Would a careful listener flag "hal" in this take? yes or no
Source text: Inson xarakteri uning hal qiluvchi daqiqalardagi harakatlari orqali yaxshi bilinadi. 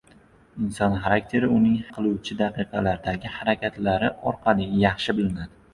yes